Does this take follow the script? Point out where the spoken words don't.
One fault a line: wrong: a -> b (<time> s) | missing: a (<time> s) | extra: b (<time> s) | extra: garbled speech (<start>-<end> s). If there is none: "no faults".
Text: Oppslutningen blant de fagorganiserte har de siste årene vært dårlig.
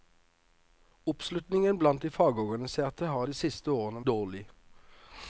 missing: vært (4.0 s)